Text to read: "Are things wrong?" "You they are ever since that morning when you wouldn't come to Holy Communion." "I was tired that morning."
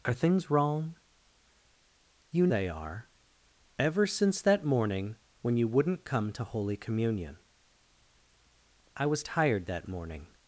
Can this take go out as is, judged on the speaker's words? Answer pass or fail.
pass